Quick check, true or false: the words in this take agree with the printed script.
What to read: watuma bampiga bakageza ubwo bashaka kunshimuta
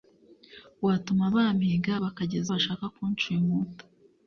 false